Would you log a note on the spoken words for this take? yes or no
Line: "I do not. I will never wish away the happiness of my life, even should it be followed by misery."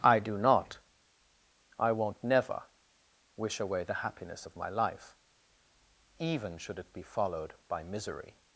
yes